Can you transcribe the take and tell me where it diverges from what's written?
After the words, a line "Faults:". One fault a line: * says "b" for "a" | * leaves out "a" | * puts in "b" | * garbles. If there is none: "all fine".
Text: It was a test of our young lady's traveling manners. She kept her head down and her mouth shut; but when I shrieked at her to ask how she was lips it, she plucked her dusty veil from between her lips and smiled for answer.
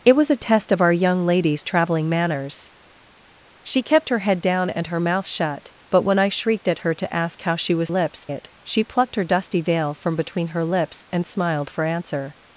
It was a test of our young lady's traveling manners. She kept her head down and her mouth shut; but when I shrieked at her to ask how she was lips it, she plucked her dusty veil from between her lips and smiled for answer.
Faults:
all fine